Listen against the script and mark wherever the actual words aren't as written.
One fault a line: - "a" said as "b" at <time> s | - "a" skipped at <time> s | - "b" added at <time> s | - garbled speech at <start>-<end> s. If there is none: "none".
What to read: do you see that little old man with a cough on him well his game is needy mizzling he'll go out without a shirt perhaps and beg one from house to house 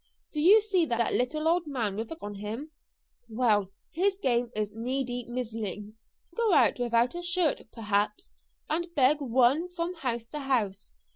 - "cough" skipped at 2.1 s
- "he'll" skipped at 5.9 s